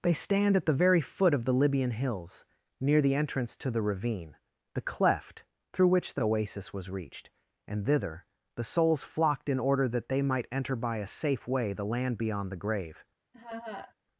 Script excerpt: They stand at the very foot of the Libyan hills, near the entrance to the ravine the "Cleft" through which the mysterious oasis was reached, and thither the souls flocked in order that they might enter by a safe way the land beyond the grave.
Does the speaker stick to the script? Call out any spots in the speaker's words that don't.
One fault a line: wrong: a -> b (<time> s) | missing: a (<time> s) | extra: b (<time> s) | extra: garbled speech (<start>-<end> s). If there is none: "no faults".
missing: mysterious (6.2 s)